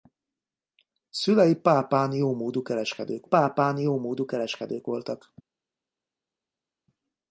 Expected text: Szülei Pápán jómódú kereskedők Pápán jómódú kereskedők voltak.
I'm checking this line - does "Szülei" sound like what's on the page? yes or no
yes